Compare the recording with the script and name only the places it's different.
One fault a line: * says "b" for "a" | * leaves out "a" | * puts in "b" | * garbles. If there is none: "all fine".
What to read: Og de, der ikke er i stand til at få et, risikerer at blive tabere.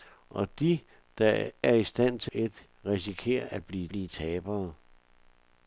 * leaves out "ikke"
* leaves out "at få"
* puts in "blive"